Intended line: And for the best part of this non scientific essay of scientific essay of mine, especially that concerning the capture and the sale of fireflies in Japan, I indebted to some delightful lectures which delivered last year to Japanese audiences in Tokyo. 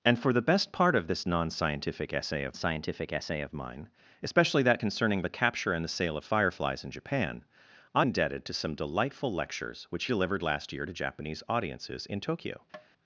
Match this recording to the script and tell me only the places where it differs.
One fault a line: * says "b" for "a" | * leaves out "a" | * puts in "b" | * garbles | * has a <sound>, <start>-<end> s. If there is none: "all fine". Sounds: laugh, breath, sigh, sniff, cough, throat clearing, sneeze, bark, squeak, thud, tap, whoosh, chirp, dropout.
* has a tap, 12.7-12.9 s